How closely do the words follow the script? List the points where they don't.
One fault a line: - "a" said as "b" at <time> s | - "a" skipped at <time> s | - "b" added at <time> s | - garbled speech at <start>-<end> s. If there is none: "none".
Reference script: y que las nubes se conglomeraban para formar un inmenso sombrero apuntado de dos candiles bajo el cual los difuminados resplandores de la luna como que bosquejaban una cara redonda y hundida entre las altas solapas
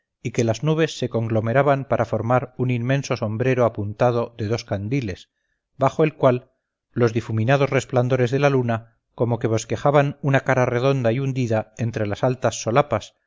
none